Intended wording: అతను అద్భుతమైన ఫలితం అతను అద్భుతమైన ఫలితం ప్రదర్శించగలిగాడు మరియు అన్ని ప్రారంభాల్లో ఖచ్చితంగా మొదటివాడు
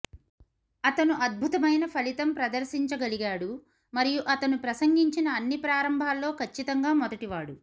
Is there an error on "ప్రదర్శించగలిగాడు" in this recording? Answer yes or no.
yes